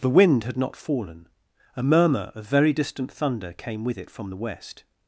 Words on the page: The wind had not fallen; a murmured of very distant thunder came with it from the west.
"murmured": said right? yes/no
no